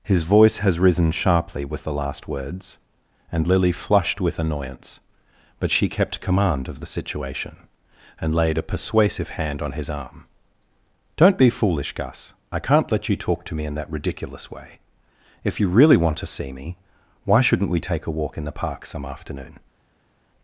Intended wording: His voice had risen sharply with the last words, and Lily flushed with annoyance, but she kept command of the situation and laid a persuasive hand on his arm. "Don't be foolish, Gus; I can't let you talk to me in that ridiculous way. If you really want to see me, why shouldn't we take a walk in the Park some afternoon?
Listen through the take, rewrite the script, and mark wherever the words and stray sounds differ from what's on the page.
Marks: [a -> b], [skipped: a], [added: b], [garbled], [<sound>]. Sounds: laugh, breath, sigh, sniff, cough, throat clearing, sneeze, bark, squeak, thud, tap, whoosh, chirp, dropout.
His voice [had -> has] risen sharply with the last words, and Lily flushed with annoyance, but she kept command of the situation and laid a persuasive hand on his arm. "Don't be foolish, Gus; I can't let you talk to me in that ridiculous way. If you really want to see me, why shouldn't we take a walk in the Park some afternoon?